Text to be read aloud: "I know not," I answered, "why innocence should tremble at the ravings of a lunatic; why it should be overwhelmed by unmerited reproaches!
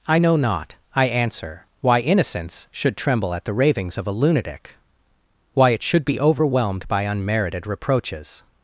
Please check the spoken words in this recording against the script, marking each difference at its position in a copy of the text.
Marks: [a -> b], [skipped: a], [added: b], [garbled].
"I know not," I [answered, -> answer] "why innocence should tremble at the ravings of a lunatic; why it should be overwhelmed by unmerited reproaches!